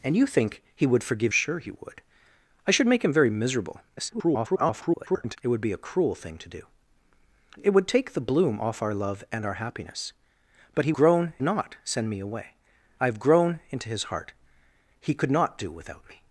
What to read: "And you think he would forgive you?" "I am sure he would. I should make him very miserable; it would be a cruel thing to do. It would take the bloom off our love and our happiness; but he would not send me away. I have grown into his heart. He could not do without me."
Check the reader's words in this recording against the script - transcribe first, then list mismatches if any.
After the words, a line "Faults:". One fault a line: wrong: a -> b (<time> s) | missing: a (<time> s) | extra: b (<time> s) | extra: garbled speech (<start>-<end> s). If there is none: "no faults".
"And you think he would forgive sure he would. I should make him very miserable; [garbled] it would be a cruel thing to do. It would take the bloom off our love and our happiness; but he grown not send me away. I have grown into his heart. He could not do without me."
Faults:
missing: you I am (1.3 s)
extra: garbled speech (4.0-5.4 s)
wrong: would -> grown (10.9 s)